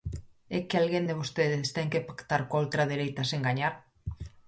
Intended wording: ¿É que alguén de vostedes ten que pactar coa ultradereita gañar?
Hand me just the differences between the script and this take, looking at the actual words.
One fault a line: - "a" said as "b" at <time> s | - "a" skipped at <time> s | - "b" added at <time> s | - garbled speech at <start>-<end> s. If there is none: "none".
- "sen" added at 3.3 s